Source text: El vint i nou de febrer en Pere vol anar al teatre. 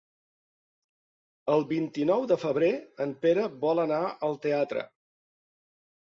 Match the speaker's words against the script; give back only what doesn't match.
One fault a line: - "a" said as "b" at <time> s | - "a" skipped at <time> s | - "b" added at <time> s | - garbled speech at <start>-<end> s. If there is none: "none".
none